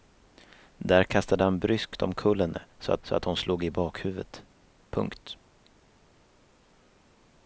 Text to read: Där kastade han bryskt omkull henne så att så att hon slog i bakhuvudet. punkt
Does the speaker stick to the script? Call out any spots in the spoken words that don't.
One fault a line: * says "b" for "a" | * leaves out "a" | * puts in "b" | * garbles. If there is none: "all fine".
all fine